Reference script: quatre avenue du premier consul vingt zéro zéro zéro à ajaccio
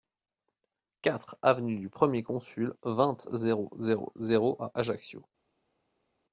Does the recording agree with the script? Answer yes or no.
yes